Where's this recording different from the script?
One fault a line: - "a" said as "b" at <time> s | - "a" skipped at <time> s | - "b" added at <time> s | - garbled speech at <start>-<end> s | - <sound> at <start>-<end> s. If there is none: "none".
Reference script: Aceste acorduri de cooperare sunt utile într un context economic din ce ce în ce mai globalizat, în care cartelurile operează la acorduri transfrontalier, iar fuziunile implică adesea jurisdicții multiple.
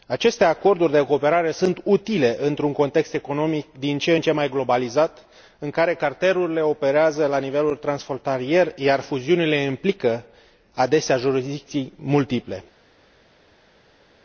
- "ce" skipped at 4.2 s
- "acorduri" said as "nivel" at 7.4 s